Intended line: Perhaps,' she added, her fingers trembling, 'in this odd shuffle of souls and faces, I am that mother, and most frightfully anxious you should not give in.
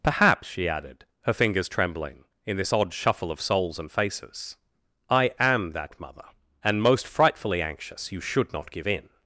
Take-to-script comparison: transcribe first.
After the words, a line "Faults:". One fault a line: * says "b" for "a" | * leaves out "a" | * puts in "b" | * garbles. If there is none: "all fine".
Perhaps,' she added, her fingers trembling, 'in this odd shuffle of souls and faces, I am that mother, and most frightfully anxious you should not give in.
Faults:
all fine